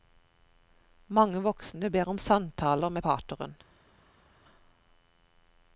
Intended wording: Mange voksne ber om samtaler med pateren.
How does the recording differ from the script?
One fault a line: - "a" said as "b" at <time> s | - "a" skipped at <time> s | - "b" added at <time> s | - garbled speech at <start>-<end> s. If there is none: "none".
none